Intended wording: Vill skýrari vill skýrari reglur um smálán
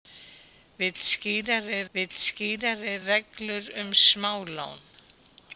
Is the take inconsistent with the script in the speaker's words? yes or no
no